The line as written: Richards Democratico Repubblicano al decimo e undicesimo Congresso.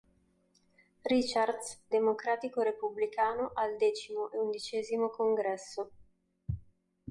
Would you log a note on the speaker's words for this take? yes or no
no